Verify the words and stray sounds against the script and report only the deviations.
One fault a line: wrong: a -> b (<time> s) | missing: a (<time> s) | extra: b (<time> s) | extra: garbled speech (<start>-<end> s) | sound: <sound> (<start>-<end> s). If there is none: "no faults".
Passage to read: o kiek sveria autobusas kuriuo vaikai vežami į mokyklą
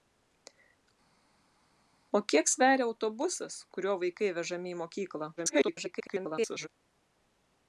extra: garbled speech (5.4-6.7 s)